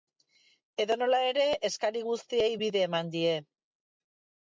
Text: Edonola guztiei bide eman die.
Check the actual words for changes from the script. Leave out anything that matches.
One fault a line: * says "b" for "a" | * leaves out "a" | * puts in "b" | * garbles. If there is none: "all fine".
* puts in "ere eskari"